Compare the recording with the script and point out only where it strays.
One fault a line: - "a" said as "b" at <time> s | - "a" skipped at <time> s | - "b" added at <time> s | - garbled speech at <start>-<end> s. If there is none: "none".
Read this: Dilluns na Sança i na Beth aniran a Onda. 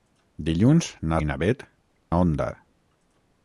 - "Sança" skipped at 1.2 s
- "aniran" skipped at 1.7 s